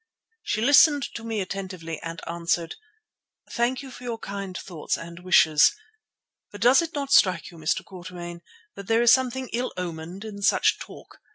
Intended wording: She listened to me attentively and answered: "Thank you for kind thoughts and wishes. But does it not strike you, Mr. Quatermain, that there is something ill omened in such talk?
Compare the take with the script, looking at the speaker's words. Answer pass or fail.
fail